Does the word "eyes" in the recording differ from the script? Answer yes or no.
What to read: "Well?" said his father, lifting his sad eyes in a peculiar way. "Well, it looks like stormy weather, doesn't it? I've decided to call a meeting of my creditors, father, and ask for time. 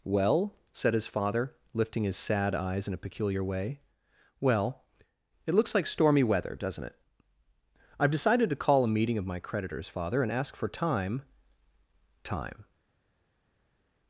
no